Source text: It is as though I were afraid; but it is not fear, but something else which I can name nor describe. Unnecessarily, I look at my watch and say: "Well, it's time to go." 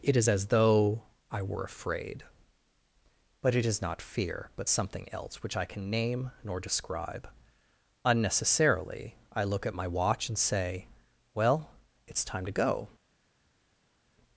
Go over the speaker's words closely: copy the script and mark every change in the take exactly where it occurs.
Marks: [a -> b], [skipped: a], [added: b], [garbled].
It is as though I were afraid; but it is not fear, but something else which I can name nor describe. Unnecessarily, I look at my watch and say: "Well, it's time to go."